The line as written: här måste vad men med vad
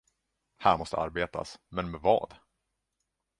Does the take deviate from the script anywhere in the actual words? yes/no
yes